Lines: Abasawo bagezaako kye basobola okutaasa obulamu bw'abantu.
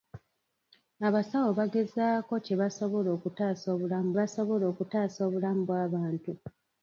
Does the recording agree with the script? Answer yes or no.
no